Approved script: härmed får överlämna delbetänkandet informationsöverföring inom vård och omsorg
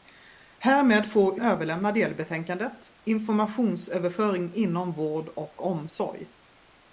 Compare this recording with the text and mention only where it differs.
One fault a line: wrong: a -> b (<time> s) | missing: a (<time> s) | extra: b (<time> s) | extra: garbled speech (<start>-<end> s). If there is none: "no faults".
no faults